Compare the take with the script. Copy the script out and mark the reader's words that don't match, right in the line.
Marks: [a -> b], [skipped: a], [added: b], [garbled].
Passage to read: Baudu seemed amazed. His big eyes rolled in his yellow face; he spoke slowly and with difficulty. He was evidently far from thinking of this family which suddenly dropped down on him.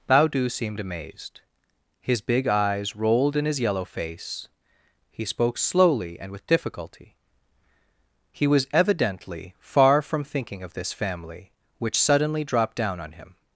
Baudu seemed amazed. His big eyes rolled in his yellow face; he spoke slowly and with difficulty. He was evidently far from thinking of this family which suddenly dropped down on him.